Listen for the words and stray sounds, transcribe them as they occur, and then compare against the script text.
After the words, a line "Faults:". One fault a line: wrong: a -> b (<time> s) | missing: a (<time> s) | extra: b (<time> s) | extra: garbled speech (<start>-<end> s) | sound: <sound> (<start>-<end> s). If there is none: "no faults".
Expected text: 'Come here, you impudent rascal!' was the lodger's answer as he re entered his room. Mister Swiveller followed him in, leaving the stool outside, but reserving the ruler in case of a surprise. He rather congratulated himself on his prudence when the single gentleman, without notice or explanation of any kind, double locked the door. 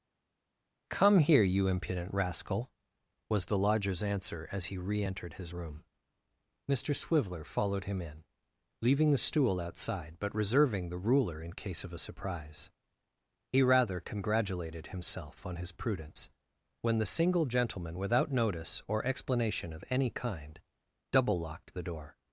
'Come here, you impudent rascal!' was the lodger's answer as he re entered his room. Mister Swiveller followed him in, leaving the stool outside, but reserving the ruler in case of a surprise. He rather congratulated himself on his prudence when the single gentleman, without notice or explanation of any kind, double locked the door.
Faults:
no faults